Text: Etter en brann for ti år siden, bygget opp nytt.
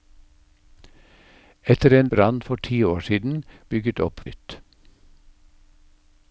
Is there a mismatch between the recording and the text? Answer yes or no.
no